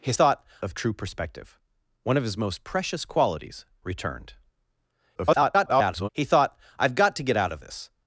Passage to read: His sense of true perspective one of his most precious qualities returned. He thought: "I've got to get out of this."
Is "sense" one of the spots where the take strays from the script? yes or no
yes